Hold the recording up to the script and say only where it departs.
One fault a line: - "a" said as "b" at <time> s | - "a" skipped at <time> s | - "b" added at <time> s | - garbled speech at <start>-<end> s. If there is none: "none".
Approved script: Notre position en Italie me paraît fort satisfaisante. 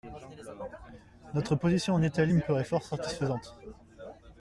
none